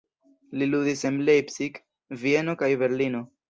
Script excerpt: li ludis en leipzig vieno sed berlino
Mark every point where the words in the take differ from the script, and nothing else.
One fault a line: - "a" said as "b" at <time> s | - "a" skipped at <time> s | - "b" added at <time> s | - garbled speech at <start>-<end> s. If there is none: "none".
- "sed" said as "kaj" at 2.6 s